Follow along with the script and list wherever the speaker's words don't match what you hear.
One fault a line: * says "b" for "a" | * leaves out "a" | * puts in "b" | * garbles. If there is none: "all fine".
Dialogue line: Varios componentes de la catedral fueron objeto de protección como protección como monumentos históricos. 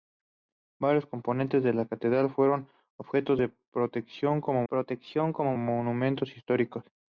all fine